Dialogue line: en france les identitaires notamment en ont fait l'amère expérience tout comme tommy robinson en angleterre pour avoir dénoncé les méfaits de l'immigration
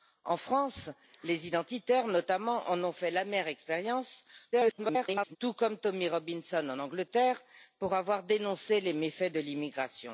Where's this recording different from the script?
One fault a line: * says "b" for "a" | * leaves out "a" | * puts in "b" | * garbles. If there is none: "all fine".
* garbles